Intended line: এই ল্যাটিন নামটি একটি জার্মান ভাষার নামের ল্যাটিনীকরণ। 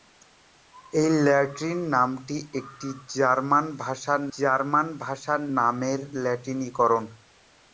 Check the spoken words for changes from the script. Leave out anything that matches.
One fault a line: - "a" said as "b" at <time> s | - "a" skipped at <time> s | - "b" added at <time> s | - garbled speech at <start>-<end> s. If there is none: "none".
- "জার্মান ভাষার" added at 4.4 s